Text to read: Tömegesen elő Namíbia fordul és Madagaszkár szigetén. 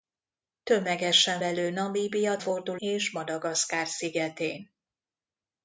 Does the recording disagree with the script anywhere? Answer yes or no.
no